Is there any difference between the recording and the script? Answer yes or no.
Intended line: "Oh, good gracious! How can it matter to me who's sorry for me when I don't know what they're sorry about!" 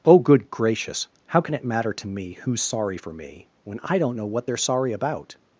no